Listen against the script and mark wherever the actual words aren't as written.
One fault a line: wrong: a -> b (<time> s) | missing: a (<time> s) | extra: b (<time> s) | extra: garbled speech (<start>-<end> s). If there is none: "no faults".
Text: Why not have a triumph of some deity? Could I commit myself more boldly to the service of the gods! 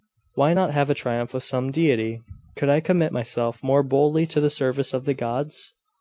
no faults